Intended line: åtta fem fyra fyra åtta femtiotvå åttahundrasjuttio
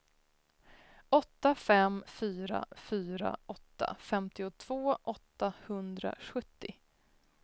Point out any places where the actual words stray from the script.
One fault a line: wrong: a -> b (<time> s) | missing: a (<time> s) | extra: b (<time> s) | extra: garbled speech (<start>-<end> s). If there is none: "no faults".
no faults